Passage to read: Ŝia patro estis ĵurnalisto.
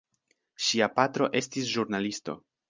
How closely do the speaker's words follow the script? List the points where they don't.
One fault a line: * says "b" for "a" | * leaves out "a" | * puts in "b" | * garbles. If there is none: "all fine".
all fine